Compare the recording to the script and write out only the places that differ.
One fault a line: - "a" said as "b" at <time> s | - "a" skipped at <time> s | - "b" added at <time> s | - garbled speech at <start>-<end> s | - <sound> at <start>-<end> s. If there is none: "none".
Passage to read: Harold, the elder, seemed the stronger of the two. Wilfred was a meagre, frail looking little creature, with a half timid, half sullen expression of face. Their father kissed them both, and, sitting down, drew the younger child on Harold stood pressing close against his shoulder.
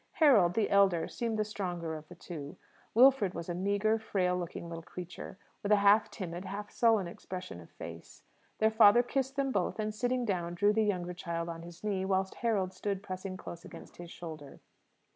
- "his knee whilst" added at 11.6 s